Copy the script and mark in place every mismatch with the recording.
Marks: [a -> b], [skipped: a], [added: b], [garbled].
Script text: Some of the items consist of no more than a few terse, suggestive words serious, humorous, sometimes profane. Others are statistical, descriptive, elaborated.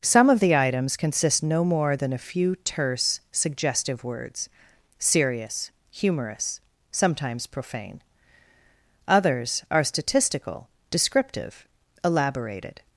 Some of the items consist [skipped: of] no more than a few terse, suggestive words serious, humorous, sometimes profane. Others are statistical, descriptive, elaborated.